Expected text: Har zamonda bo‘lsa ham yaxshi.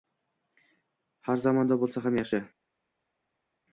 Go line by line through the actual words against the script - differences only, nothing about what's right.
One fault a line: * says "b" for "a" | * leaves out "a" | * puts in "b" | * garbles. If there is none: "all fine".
all fine